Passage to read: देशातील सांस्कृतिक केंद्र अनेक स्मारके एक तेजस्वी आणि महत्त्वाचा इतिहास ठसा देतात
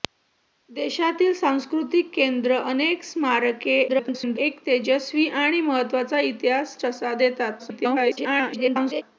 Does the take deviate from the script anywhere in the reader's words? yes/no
yes